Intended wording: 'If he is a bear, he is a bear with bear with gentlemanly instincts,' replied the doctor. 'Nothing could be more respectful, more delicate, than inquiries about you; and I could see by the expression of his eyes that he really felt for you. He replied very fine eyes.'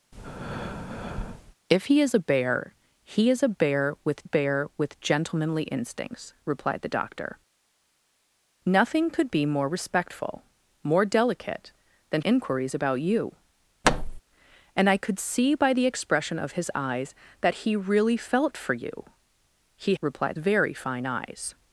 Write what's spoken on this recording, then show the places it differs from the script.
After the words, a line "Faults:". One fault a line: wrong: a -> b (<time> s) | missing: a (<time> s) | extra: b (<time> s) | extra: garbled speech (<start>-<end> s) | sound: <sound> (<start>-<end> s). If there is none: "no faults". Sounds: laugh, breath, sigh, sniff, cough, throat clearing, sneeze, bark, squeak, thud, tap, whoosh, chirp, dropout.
'If he is a bear, he is a bear with bear with gentlemanly instincts,' replied the doctor. 'Nothing could be more respectful, more delicate, than inquiries about you; and I could see by the expression of his eyes that he really felt for you. He replied very fine eyes.'
Faults:
sound: breath (0.1-1.5 s)
sound: thud (13.8-14.2 s)